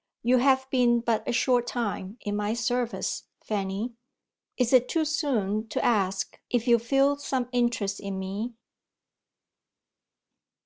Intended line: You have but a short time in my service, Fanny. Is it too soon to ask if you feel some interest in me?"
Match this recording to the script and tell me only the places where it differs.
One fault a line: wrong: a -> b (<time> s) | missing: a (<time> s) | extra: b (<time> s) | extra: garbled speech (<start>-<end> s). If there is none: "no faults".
extra: been (0.7 s)